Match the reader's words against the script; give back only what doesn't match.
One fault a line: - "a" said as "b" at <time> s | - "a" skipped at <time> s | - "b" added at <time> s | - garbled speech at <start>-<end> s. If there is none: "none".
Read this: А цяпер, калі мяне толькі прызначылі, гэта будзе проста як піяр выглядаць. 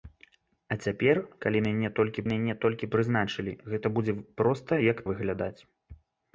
- "мяне толькі" added at 2.3 s
- "піяр" skipped at 5.0 s